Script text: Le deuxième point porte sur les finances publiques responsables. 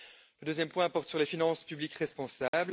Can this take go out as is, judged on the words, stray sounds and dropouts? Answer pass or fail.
fail